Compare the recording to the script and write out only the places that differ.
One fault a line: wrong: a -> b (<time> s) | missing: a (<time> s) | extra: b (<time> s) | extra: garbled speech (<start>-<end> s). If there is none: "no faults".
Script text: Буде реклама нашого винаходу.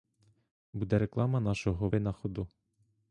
no faults